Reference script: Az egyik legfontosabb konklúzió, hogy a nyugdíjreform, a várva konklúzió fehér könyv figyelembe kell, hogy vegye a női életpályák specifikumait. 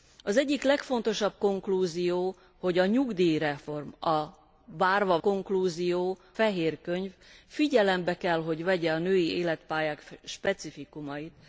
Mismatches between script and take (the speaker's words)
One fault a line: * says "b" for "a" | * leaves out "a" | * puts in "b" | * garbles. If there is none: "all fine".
all fine